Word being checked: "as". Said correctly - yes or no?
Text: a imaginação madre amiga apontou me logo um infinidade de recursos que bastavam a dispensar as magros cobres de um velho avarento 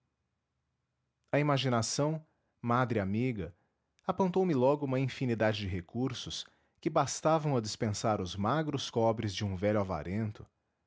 no